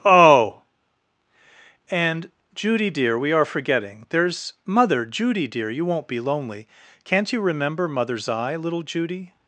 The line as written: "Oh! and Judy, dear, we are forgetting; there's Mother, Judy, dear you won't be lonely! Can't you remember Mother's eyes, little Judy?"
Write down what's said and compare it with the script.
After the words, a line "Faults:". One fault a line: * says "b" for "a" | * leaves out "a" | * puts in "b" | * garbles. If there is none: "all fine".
"Oh! and Judy, dear, we are forgetting; there's Mother, Judy, dear you won't be lonely! Can't you remember Mother's eye, little Judy?"
Faults:
* says "eye" for "eyes"